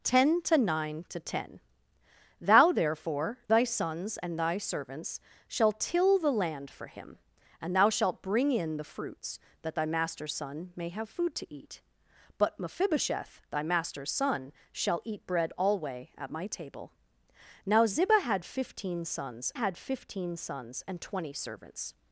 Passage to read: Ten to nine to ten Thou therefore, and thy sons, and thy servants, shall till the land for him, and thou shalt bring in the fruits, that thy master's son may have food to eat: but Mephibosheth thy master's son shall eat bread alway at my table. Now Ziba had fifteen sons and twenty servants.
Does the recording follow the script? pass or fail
fail